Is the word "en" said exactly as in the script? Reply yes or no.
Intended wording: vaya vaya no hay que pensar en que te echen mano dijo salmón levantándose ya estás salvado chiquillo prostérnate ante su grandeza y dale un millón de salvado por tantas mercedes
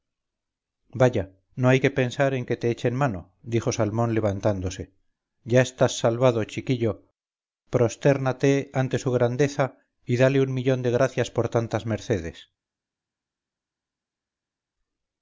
yes